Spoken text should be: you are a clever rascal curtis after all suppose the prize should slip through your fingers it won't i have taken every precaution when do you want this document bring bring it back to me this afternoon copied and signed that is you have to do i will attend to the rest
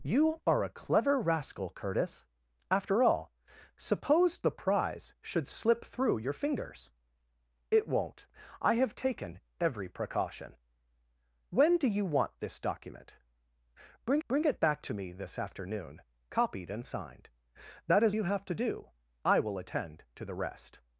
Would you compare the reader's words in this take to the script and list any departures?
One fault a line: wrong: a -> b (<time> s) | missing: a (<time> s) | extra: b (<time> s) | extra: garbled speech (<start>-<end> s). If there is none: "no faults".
no faults